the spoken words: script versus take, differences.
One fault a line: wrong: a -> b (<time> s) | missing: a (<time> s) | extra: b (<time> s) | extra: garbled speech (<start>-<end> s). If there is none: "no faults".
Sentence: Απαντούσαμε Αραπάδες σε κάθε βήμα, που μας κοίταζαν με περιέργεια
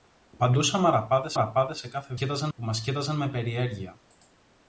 extra: Αραπάδες (1.3 s)
wrong: βήμα -> κοίταζαν (2.1 s)